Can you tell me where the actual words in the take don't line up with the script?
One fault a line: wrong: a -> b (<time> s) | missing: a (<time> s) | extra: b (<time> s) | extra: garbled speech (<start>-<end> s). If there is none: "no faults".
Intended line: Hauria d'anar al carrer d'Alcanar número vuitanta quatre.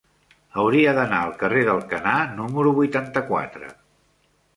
no faults